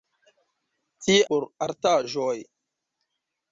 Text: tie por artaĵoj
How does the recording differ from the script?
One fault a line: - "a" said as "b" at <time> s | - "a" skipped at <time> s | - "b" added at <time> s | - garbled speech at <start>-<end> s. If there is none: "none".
none